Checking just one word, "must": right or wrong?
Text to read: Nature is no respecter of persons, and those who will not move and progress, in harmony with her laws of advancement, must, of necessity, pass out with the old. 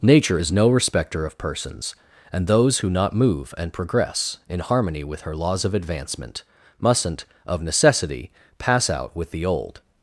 wrong